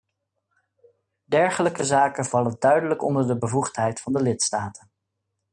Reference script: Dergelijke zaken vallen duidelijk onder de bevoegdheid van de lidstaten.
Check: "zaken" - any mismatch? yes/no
no